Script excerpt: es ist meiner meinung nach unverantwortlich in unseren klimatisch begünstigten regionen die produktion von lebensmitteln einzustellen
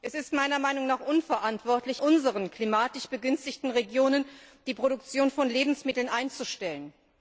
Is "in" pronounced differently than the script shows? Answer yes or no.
yes